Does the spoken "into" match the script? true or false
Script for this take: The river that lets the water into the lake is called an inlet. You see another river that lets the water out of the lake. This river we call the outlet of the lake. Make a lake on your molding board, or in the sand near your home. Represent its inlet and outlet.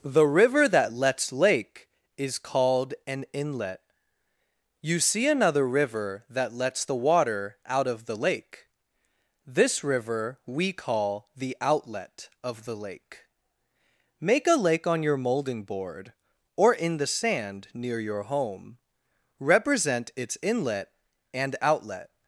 false